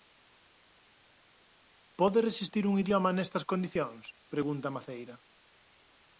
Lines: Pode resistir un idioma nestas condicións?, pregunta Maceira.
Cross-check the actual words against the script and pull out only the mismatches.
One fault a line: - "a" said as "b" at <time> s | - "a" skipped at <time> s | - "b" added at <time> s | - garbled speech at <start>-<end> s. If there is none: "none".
none